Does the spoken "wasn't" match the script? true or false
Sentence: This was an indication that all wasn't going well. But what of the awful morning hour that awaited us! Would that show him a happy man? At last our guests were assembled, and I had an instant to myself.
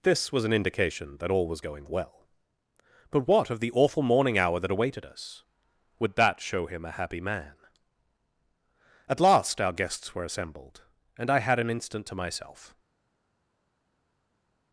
false